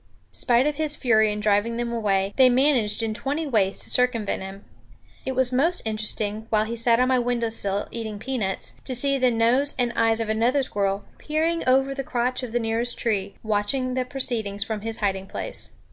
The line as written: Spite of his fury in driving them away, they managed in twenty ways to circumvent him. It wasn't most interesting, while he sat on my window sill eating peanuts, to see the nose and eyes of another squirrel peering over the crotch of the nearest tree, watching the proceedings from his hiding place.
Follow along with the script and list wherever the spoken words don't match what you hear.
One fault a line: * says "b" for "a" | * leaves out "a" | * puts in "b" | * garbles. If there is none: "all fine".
* says "was" for "wasn't"